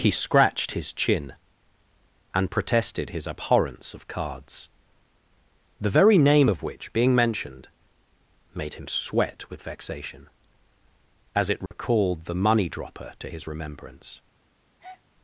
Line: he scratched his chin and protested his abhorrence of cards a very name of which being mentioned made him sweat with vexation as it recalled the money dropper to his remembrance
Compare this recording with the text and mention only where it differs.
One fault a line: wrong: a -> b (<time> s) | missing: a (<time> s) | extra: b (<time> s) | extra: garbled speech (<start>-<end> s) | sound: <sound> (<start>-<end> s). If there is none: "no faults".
wrong: a -> the (5.8 s)
sound: dropout (11.7-11.7 s)
sound: breath (14.8-15.0 s)